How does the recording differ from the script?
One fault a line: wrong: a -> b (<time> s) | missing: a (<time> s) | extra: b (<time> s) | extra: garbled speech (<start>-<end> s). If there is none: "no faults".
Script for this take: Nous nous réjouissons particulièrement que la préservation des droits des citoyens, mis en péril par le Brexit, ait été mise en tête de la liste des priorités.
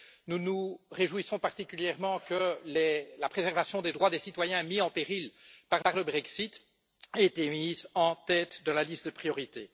extra: par (5.8 s)